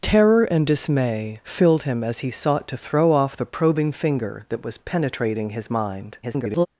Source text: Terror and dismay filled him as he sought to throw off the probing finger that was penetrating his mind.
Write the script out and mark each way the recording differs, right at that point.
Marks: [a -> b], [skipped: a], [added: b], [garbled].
Terror and dismay filled him as he sought to throw off the probing finger that was penetrating his mind. [garbled]